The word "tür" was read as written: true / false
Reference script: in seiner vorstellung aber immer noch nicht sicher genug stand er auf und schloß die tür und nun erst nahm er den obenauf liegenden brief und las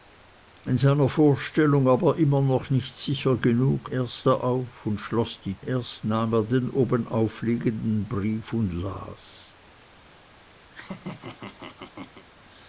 false